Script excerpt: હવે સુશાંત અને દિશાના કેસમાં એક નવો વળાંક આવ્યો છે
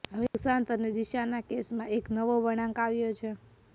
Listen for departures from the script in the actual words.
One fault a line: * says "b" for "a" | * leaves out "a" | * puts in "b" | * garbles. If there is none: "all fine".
all fine